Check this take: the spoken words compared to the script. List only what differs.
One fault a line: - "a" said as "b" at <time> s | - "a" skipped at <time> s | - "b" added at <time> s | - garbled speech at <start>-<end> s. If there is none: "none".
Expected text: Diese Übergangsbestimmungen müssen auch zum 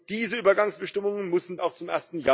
none